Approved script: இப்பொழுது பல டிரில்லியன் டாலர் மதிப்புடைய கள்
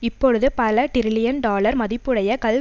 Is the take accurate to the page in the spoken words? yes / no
yes